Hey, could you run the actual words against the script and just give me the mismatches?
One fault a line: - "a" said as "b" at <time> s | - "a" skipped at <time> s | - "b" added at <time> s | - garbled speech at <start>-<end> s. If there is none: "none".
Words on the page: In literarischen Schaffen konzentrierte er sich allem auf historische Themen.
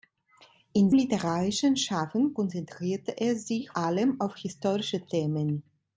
none